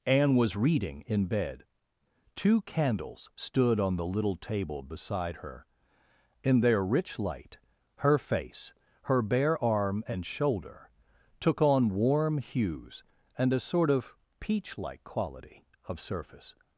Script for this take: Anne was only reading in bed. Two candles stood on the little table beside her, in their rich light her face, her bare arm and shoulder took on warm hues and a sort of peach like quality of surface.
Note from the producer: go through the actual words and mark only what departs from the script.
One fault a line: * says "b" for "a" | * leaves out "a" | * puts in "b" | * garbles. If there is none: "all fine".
* leaves out "only"